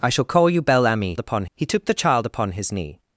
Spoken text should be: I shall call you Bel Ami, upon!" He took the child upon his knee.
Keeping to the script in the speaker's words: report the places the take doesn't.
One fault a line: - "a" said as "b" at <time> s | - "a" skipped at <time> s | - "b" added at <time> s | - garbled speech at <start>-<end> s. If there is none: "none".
none